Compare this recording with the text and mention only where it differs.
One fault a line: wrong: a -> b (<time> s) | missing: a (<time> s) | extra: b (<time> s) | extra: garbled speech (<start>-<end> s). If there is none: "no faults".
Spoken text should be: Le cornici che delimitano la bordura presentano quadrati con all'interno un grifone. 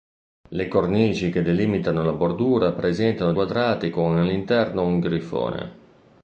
no faults